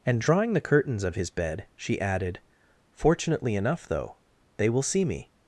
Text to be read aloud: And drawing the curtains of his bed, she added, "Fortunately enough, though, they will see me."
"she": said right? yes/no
yes